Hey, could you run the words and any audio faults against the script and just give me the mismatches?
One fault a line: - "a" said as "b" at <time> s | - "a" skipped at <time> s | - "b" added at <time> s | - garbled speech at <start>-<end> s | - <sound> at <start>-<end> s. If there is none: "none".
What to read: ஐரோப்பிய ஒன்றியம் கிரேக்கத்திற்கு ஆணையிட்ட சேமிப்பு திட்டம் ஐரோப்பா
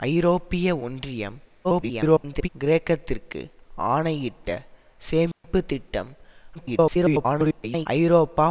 - garbled speech at 1.6-2.5 s
- dropout at 5.3-5.4 s
- garbled speech at 6.5-7.9 s